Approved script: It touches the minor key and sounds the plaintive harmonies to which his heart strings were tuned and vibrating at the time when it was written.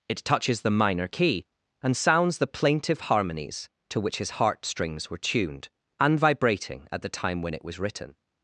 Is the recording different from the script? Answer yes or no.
no